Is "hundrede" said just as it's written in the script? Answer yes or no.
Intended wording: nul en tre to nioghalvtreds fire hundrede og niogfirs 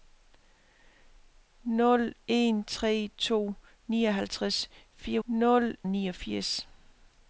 no